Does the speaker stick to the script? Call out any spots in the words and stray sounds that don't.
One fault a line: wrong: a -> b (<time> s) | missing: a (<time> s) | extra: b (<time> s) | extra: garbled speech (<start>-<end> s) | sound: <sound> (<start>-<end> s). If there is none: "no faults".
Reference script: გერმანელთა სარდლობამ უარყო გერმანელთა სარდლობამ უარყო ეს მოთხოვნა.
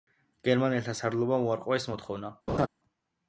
missing: გერმანელთა სარდლობამ უარყო (1.8 s)
sound: laugh (2.5-2.7 s)